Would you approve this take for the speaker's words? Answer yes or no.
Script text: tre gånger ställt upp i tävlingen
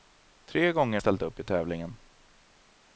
yes